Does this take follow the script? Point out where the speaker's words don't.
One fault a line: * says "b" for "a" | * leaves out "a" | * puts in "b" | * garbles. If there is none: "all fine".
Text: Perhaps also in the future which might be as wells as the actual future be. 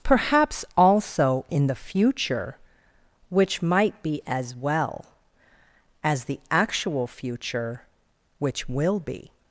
* says "well" for "wells"
* puts in "which will"